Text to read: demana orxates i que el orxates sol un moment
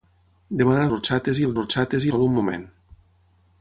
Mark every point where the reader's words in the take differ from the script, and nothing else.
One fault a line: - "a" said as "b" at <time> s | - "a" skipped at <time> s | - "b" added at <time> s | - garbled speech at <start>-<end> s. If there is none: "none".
none